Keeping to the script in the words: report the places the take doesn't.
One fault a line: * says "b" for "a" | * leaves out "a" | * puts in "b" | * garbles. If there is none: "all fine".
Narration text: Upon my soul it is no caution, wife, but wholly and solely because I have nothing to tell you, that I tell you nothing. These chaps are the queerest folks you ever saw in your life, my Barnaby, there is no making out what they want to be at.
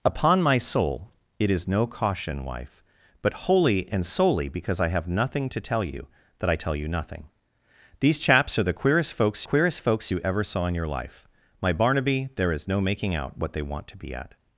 * puts in "queerest folks"